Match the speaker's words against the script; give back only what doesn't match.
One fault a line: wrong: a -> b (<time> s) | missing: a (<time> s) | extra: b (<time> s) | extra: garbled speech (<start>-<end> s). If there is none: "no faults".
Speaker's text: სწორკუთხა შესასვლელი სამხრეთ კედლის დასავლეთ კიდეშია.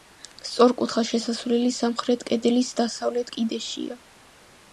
no faults